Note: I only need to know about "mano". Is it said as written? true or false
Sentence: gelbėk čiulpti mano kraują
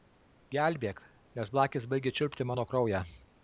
true